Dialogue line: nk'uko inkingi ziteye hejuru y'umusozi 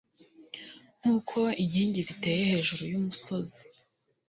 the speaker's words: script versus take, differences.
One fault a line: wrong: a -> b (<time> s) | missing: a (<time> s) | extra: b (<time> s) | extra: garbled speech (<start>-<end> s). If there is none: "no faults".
no faults